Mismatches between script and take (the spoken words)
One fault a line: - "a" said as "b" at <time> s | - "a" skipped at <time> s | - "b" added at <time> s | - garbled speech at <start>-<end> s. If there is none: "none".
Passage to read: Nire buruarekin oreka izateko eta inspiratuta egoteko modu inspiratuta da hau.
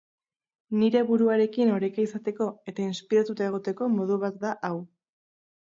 - "inspiratuta" said as "bat" at 4.3 s